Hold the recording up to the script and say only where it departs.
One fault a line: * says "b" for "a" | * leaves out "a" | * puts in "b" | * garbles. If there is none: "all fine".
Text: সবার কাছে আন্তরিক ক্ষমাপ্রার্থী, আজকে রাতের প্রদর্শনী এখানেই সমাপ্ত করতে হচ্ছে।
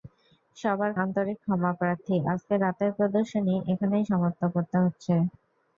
* leaves out "কাছে"